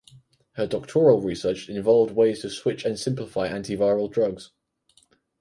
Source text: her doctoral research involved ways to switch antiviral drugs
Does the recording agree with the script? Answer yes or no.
no